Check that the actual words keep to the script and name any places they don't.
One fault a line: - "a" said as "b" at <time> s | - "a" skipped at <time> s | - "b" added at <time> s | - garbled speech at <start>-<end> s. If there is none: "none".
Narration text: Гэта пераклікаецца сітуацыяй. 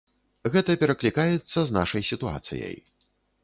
- "з нашай" added at 1.7 s